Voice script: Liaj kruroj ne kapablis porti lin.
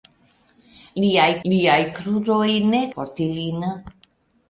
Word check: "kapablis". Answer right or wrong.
wrong